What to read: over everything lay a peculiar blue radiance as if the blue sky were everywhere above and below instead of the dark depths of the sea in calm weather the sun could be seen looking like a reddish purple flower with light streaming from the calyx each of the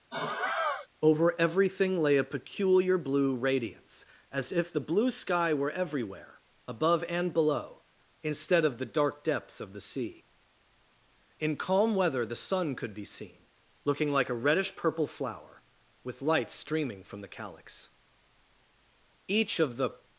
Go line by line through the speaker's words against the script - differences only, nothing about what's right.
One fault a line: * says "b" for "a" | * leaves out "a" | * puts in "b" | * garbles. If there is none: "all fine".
all fine